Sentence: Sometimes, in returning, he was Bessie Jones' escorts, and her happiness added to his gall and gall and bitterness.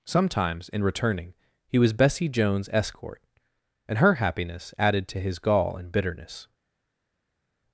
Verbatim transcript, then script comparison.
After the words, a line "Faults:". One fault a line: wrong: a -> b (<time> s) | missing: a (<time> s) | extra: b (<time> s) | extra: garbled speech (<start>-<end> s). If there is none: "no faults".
Sometimes, in returning, he was Bessie Jones' escort, and her happiness added to his gall and bitterness.
Faults:
wrong: escorts -> escort (2.7 s)
missing: gall and (5.9 s)